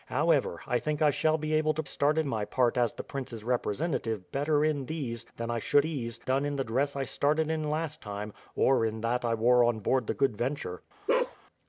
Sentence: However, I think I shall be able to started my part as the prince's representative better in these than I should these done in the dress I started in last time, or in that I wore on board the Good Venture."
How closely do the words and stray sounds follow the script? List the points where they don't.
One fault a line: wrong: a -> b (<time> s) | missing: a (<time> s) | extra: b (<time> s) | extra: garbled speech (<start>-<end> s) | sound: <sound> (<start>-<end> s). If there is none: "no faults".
sound: bark (11.1-11.4 s)